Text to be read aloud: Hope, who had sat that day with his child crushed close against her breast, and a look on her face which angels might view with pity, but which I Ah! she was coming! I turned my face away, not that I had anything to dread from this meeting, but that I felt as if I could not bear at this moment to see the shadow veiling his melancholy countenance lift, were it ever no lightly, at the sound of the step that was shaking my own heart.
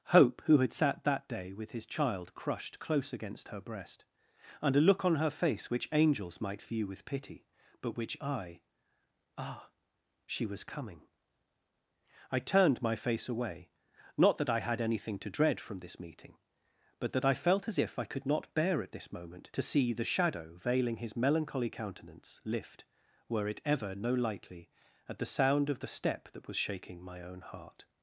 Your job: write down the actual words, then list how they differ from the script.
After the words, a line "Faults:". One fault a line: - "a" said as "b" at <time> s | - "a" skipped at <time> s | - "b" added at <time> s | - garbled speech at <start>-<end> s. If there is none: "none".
Hope, who had sat that day with his child crushed close against her breast, and a look on her face which angels might view with pity, but which I Ah! she was coming! I turned my face away, not that I had anything to dread from this meeting, but that I felt as if I could not bear at this moment to see the shadow veiling his melancholy countenance lift, were it ever no lightly, at the sound of the step that was shaking my own heart.
Faults:
none